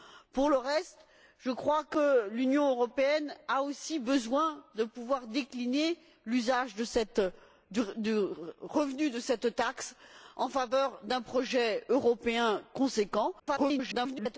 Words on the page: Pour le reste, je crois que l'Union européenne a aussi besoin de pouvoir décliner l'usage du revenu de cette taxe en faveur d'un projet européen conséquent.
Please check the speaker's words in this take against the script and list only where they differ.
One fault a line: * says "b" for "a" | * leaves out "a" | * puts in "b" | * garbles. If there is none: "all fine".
* garbles